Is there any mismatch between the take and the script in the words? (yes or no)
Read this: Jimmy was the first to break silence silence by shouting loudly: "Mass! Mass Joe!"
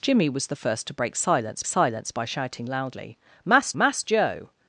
no